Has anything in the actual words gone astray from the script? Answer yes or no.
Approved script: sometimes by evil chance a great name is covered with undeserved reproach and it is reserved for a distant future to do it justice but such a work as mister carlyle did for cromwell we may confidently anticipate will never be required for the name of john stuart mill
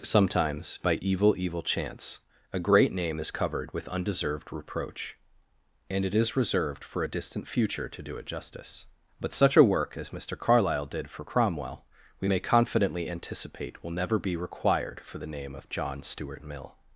yes